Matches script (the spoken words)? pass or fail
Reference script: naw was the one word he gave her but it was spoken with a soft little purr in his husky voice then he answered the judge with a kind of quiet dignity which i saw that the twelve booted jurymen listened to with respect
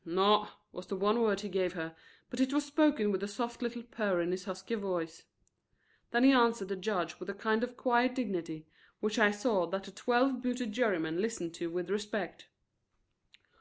pass